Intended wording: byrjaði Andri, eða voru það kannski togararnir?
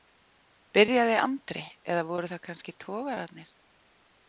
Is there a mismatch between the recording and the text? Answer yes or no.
no